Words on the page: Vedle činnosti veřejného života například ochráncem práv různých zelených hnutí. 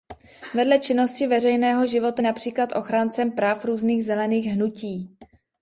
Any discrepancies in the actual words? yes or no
no